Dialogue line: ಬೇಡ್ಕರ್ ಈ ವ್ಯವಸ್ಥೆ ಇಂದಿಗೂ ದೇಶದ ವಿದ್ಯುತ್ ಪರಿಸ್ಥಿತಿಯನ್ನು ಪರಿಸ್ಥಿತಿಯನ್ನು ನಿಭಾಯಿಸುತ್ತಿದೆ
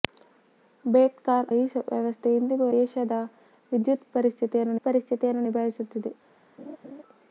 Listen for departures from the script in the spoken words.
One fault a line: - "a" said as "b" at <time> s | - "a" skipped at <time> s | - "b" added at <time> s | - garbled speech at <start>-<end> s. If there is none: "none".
none